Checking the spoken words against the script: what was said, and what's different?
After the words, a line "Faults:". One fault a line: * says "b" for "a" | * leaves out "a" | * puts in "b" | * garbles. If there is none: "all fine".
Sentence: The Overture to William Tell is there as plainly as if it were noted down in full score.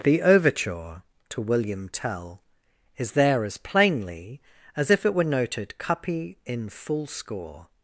The Overture to William Tell is there as plainly as if it were noted cuppy in full score.
Faults:
* says "cuppy" for "down"